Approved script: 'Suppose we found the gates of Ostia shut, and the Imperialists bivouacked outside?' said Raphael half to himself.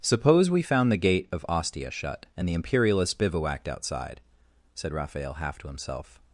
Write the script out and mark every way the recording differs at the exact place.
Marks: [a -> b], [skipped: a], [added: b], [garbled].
'Suppose we found the [gates -> gate] of Ostia shut, and the Imperialists bivouacked outside?' said Raphael half to himself.